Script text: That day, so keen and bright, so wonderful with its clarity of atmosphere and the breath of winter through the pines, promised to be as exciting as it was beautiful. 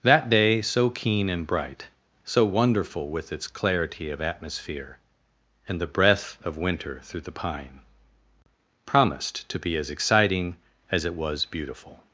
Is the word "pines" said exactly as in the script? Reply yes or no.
no